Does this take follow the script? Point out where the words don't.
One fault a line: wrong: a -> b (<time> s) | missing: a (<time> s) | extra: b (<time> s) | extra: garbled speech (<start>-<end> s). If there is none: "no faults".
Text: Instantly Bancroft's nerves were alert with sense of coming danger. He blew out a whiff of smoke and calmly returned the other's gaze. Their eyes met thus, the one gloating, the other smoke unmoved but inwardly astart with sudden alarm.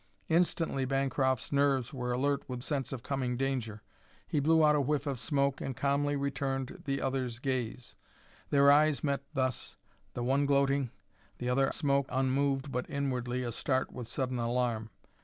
no faults